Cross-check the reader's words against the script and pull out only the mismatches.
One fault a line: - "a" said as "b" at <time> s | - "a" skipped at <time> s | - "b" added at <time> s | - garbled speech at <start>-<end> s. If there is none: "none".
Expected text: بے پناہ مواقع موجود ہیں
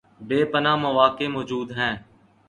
none